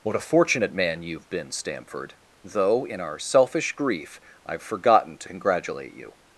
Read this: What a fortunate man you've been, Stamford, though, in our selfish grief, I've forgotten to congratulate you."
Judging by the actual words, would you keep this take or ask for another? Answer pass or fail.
pass